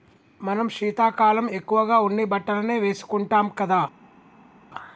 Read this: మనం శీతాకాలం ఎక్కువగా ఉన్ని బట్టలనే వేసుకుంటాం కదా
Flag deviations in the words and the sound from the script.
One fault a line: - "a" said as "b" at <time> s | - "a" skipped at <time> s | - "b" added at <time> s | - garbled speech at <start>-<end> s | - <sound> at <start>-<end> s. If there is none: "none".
none